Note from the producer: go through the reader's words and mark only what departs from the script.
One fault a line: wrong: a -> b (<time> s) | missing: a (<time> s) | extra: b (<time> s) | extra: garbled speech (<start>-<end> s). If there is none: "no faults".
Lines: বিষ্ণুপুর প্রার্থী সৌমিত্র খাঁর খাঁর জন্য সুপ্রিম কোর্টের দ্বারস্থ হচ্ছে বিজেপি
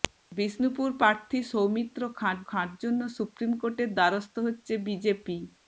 no faults